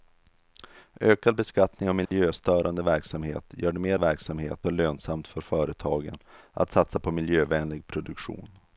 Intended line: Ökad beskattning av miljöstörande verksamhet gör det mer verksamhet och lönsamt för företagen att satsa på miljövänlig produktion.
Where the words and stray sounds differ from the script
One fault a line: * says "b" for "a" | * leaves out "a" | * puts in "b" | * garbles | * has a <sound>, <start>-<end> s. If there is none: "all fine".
* has a dropout, 2.1-2.1 s